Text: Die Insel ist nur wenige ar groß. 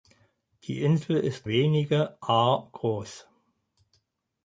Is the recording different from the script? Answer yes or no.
yes